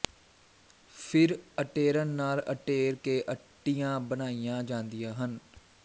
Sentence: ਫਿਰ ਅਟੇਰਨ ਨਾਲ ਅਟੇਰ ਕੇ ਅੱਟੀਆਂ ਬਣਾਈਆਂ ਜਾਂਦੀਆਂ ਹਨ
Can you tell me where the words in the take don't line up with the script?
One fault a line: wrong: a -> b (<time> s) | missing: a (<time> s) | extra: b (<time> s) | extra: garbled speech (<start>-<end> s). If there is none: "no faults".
no faults